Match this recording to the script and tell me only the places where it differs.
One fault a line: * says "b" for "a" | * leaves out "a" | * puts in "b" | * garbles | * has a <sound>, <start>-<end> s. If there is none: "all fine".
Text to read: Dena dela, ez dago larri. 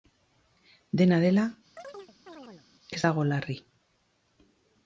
* has a chirp, 1.8-2.7 s